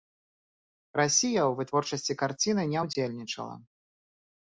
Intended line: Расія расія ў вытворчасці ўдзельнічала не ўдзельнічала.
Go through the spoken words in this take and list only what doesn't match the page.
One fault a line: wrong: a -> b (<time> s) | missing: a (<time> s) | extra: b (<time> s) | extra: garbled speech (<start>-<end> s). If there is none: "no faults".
missing: расія (1.4 s)
wrong: ўдзельнічала -> карціны (2.2 s)